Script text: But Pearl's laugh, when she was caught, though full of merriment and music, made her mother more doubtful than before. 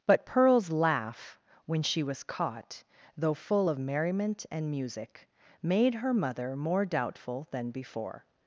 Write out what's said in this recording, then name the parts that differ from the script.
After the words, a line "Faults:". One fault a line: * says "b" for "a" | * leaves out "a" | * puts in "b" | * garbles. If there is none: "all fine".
But Pearl's laugh, when she was caught, though full of merriment and music, made her mother more doubtful than before.
Faults:
all fine